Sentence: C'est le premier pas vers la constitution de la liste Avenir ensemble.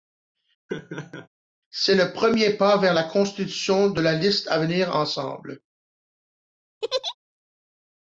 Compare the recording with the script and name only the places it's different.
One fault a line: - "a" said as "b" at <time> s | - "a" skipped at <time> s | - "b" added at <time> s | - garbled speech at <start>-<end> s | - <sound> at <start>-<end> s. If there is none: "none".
- laugh at 0.7-1.3 s
- laugh at 6.8-7.2 s